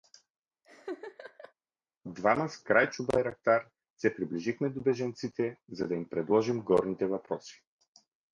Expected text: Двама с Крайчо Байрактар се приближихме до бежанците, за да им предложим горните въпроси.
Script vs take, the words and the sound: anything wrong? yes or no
yes